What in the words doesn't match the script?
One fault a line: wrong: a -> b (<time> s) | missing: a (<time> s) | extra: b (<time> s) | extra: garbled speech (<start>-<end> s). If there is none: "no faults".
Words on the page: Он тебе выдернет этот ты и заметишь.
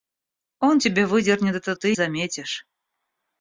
no faults